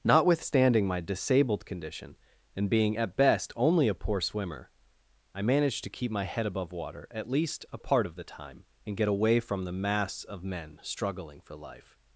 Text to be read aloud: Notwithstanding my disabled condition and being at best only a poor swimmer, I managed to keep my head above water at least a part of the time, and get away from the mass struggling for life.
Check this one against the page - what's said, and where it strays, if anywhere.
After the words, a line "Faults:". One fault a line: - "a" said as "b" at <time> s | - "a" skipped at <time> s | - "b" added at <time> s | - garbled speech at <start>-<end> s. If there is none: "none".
Notwithstanding my disabled condition and being at best only a poor swimmer, I managed to keep my head above water at least a part of the time, and get away from the mass of men struggling for life.
Faults:
- "of men" added at 10.2 s